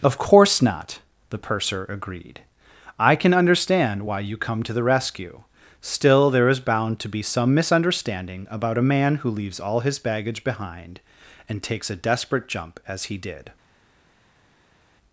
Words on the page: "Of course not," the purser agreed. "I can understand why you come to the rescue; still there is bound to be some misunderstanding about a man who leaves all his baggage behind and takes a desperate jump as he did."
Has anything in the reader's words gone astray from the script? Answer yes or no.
no